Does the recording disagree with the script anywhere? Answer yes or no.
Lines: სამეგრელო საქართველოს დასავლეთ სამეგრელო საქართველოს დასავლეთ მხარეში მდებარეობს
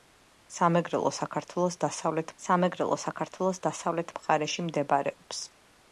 no